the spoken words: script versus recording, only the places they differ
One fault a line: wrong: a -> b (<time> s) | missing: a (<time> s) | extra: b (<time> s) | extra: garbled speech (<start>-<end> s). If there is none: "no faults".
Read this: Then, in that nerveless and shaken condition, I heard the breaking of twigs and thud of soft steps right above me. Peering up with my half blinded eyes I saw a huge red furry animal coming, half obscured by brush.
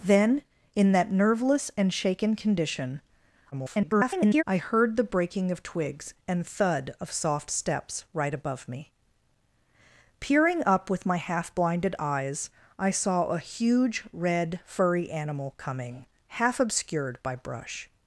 extra: garbled speech (3.5-4.4 s)